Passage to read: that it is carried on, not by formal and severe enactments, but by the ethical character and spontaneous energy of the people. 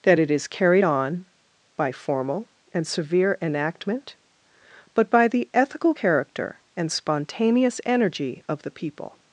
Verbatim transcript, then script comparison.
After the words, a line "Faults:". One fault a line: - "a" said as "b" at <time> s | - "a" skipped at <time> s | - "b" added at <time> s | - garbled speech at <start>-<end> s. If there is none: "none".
that it is carried on, by formal and severe enactment, but by the ethical character and spontaneous energy of the people.
Faults:
- "not" skipped at 1.2 s
- "enactments" said as "enactment" at 3.4 s